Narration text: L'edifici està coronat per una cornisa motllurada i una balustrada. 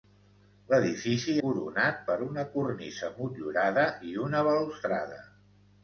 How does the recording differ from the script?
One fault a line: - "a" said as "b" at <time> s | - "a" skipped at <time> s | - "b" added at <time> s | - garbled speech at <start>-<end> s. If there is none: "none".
- "està" skipped at 1.4 s